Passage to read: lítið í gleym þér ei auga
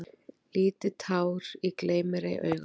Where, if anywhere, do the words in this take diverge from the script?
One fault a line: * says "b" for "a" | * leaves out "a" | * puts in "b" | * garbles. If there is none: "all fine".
* puts in "tár"
* says "mér" for "þér"